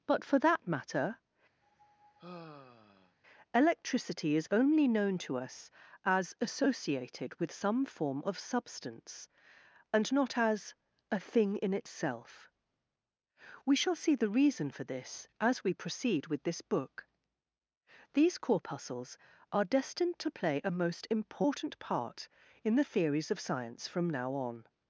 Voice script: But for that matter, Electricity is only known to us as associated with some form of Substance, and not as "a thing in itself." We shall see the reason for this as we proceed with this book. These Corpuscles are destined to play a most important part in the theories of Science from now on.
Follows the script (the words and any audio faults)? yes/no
no